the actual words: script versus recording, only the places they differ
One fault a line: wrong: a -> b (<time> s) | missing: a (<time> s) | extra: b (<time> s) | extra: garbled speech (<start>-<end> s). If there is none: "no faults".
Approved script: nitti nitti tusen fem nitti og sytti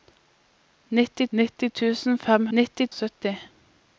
no faults